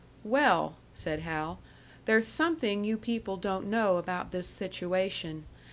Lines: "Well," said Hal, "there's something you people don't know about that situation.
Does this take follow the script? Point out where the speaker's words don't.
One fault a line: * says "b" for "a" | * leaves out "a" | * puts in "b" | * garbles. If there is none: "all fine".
* says "this" for "that"